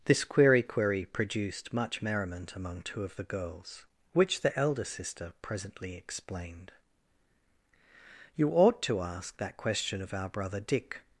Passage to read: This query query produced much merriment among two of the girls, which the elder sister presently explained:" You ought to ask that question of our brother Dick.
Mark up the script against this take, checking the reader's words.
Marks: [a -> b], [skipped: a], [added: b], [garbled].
This query query produced much merriment among two of the girls, which the elder sister presently explained:" You ought to ask that question of our brother Dick.